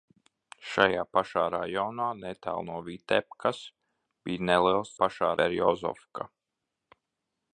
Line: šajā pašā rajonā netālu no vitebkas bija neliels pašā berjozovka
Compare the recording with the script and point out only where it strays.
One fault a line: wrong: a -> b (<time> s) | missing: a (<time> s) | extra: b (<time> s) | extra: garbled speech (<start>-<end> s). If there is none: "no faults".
no faults